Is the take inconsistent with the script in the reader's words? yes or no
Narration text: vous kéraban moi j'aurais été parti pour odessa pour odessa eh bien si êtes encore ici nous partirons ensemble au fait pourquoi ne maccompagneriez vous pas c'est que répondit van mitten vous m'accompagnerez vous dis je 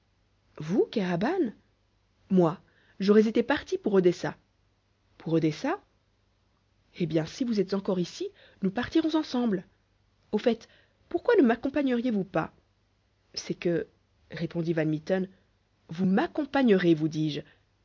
yes